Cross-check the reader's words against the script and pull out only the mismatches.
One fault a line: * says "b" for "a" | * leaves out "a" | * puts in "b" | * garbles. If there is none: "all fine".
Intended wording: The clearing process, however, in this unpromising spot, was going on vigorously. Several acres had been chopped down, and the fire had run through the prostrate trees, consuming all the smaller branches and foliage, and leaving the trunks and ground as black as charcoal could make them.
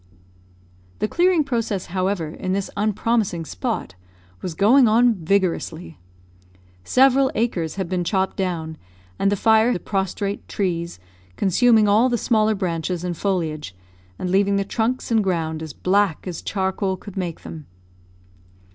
* leaves out "had run through"